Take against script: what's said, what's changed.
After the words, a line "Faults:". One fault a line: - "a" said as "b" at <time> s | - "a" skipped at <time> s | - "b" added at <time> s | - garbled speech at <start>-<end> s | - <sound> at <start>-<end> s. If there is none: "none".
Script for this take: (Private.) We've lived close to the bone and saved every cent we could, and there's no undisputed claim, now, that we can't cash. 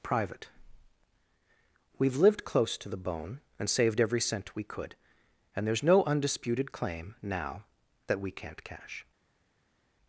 (Private.) We've lived close to the bone and saved every cent we could, and there's no undisputed claim, now, that we can't cash.
Faults:
none